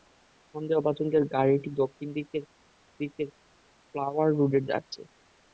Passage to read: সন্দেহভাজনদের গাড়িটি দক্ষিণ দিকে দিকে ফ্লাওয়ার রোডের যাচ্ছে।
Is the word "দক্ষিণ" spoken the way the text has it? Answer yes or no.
yes